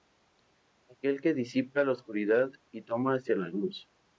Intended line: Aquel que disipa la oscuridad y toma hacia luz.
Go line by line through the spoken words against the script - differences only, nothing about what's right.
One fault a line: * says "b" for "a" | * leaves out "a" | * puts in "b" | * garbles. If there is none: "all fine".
* puts in "la"